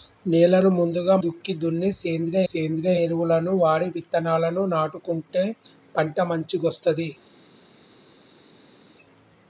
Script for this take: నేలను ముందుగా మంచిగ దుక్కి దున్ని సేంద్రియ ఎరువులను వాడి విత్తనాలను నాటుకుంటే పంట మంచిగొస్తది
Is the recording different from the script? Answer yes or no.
yes